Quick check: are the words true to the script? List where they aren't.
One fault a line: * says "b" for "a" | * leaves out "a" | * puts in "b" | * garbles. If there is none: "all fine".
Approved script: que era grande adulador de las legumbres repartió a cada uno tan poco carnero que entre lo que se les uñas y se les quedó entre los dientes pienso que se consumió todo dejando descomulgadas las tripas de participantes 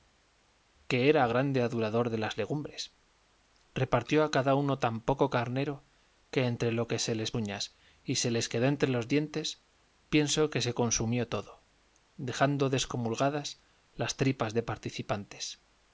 all fine